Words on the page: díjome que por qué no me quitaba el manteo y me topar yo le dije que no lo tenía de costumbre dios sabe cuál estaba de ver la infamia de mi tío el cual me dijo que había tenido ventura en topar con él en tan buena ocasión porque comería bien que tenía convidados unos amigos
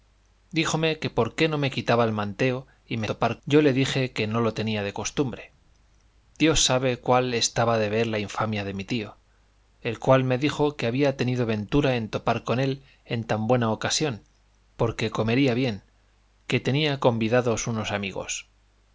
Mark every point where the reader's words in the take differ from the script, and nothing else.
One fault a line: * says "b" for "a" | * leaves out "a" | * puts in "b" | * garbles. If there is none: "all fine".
all fine